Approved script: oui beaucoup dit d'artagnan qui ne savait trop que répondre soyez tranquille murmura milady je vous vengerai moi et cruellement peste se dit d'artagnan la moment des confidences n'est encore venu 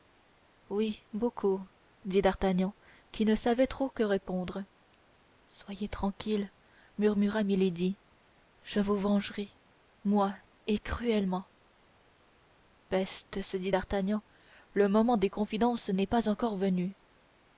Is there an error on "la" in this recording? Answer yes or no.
yes